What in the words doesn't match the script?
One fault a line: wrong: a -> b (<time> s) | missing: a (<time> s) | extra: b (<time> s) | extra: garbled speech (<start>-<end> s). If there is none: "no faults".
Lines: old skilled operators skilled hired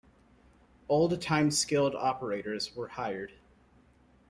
extra: time (1.2 s)
wrong: skilled -> were (2.8 s)